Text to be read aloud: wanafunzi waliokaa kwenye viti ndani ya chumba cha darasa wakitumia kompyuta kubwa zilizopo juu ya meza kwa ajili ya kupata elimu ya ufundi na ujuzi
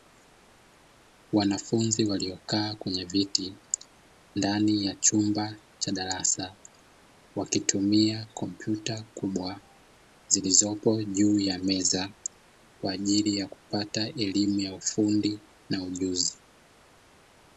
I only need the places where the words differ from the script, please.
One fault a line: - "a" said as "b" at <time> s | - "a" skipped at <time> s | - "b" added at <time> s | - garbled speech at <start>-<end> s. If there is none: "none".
none